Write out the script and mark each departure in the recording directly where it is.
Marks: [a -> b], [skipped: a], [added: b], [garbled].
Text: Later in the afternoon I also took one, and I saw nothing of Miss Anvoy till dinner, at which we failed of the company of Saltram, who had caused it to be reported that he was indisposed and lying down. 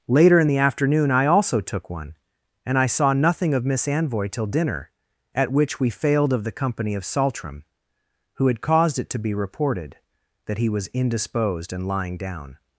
Later in the afternoon I also took one, and I saw nothing of Miss Anvoy till dinner, at which we failed of the company of Saltram, who had caused it to be reported that he was indisposed and lying down.